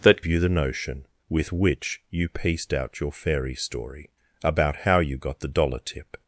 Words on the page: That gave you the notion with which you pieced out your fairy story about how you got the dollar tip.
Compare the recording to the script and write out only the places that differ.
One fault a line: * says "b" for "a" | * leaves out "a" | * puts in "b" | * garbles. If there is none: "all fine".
* leaves out "gave"